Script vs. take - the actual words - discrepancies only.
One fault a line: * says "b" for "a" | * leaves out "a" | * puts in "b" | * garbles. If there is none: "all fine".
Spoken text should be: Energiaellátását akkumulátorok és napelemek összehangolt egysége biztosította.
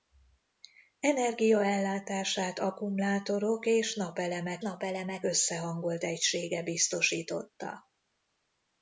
* puts in "napelemek"